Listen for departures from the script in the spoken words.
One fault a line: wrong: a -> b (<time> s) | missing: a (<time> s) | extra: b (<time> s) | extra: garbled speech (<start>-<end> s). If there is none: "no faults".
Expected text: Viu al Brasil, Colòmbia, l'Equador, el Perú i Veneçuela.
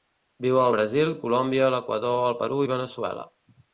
no faults